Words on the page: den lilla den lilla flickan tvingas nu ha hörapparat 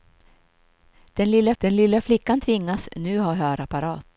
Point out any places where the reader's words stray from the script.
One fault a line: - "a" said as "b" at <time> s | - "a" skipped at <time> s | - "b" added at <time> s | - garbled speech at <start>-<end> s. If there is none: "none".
none